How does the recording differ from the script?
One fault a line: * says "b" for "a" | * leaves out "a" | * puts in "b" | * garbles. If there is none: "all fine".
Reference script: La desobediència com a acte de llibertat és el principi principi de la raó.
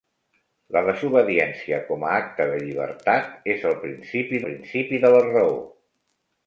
all fine